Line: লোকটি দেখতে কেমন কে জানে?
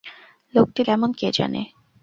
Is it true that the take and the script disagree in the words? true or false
true